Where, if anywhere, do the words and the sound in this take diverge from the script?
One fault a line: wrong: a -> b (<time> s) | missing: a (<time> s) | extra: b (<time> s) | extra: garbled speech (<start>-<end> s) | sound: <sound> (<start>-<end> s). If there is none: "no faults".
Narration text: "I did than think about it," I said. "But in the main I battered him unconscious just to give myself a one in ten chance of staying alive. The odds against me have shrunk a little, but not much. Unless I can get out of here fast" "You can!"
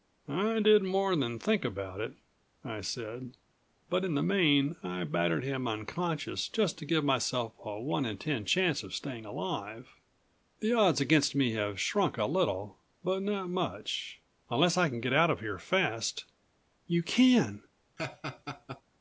extra: more (0.8 s)
sound: laugh (18.0-18.8 s)